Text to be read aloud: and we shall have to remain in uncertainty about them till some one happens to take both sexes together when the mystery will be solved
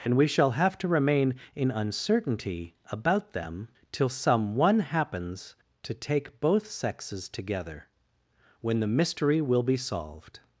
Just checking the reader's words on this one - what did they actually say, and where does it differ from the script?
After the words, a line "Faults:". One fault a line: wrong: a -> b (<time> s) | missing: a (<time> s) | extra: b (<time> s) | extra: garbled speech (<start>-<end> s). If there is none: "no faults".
and we shall have to remain in uncertainty about them till some one happens to take both sexes together when the mystery will be solved
Faults:
no faults